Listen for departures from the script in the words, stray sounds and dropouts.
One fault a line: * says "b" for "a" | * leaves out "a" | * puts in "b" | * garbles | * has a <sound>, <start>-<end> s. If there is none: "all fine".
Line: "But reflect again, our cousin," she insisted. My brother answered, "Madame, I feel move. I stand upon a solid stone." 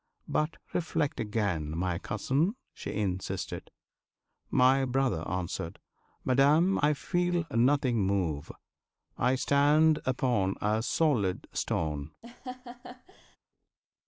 * says "my" for "our"
* puts in "nothing"
* has a laugh, 12.2-13.4 s